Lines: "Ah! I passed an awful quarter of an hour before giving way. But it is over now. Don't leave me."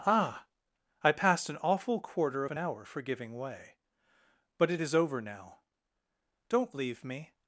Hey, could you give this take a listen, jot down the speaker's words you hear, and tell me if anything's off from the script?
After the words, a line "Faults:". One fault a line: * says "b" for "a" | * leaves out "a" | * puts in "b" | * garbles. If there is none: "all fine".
"Ah! I passed an awful quarter of an hour for giving way. But it is over now. Don't leave me."
Faults:
* says "for" for "before"